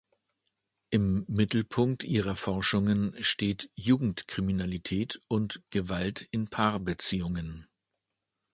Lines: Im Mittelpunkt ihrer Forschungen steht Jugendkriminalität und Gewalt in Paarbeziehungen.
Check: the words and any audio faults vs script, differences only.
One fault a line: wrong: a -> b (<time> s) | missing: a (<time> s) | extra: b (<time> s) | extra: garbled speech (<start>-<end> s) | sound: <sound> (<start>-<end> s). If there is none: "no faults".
no faults